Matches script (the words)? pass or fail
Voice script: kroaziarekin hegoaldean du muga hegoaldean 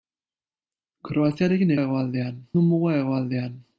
pass